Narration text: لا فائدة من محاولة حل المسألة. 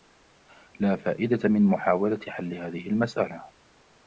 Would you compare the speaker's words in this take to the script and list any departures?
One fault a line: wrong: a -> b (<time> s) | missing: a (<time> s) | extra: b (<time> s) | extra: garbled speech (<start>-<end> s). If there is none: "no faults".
extra: هذه (2.5 s)